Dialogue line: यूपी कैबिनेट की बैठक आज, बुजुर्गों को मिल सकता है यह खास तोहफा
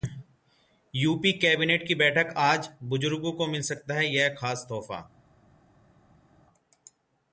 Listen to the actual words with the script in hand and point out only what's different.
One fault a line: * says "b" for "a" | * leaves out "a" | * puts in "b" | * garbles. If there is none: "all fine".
all fine